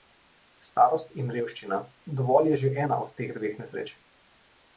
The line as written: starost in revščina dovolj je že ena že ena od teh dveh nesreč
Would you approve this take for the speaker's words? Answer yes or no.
no